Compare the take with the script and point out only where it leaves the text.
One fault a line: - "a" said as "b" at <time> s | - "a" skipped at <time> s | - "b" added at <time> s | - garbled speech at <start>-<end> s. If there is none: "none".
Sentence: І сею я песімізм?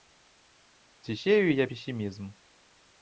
- "І" said as "Ці" at 1.0 s